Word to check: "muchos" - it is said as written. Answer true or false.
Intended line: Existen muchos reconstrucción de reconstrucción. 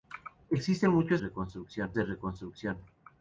true